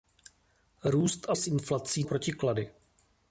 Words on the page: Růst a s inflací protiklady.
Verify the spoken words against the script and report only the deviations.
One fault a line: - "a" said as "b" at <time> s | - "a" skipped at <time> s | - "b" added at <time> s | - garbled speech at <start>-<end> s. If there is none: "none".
none